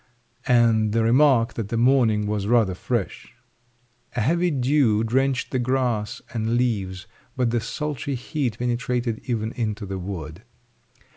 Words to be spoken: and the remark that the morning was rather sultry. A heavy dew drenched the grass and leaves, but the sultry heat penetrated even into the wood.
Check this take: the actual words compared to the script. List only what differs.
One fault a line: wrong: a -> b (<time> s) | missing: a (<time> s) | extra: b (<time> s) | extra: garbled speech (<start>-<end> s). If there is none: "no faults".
wrong: sultry -> fresh (2.7 s)